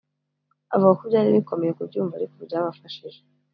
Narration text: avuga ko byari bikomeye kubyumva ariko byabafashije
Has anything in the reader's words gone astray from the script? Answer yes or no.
no